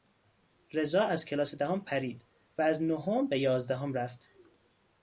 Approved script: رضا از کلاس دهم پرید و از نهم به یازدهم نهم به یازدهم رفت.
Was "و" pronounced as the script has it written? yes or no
yes